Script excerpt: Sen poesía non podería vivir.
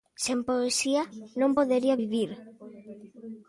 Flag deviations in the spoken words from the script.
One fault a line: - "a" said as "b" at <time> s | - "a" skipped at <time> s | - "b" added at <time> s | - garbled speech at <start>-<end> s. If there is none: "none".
none